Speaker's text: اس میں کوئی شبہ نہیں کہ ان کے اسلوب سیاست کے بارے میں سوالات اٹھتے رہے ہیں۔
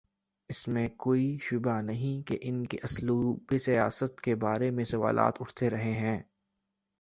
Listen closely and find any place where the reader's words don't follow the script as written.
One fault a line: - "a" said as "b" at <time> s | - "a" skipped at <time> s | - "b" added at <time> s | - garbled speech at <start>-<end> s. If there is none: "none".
none